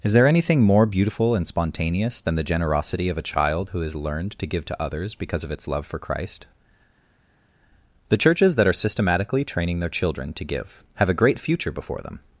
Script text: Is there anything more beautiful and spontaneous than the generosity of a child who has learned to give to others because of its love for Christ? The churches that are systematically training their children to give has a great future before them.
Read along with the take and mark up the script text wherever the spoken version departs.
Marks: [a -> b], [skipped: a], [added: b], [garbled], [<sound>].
Is there anything more beautiful and spontaneous than the generosity of a child who has learned to give to others because of its love for Christ? The churches that are systematically training their children to give [has -> have] a great future before them.